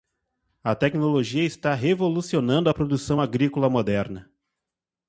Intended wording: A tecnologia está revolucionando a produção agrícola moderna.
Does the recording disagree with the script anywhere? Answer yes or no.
no